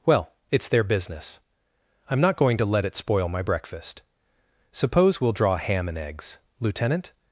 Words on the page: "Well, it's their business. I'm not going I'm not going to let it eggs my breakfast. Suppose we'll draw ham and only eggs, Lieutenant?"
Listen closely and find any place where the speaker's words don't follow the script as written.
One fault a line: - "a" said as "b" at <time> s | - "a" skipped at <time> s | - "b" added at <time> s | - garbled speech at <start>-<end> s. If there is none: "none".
- "I'm not going" skipped at 2.6 s
- "eggs" said as "spoil" at 2.9 s
- "only" skipped at 6.0 s